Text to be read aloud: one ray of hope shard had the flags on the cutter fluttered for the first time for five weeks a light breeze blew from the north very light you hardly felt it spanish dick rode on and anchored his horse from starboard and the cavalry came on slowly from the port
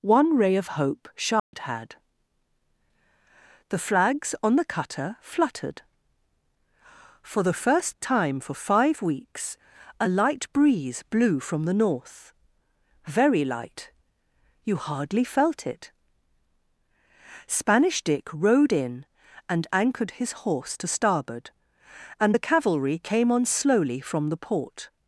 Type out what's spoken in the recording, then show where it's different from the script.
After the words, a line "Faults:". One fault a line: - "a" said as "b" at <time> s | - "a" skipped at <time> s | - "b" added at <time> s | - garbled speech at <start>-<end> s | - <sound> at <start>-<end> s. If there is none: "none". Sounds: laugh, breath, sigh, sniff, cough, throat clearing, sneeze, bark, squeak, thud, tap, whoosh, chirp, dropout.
one ray of hope shard had the flags on the cutter fluttered for the first time for five weeks a light breeze blew from the north very light you hardly felt it spanish dick rode in and anchored his horse to starboard and the cavalry came on slowly from the port
Faults:
- dropout at 1.4-1.5 s
- "on" said as "in" at 18.7 s
- "from" said as "to" at 20.8 s